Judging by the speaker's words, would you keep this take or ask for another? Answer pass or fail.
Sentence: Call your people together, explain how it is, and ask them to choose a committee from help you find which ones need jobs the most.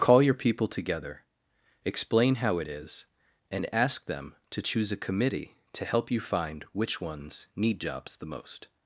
fail